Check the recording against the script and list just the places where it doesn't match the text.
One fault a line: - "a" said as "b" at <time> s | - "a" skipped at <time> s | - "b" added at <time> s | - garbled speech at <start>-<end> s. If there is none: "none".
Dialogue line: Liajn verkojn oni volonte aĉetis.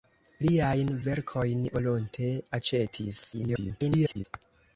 - "oni" skipped at 1.6 s
- garbled speech at 3.3-4.2 s